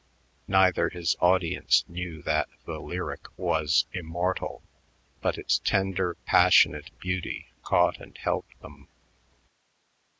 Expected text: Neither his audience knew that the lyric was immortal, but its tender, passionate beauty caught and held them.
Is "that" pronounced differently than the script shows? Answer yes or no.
no